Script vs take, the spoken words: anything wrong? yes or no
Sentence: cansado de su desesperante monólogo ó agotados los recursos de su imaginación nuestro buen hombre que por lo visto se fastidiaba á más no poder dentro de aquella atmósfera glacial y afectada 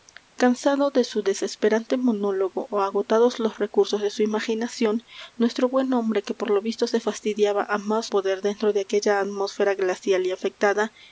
yes